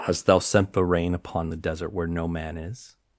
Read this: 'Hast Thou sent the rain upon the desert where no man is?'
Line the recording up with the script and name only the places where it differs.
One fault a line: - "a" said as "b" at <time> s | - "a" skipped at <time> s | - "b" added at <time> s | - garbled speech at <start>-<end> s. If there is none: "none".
none